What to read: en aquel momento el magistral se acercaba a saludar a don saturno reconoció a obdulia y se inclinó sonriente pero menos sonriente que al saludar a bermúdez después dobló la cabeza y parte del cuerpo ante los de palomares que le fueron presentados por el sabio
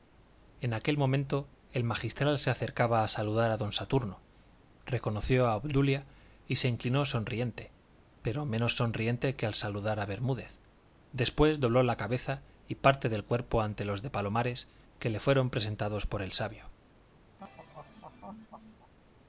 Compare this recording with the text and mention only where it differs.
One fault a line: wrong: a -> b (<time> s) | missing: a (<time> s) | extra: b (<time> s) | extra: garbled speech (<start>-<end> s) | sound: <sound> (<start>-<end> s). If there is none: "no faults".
sound: laugh (17.4-18.9 s)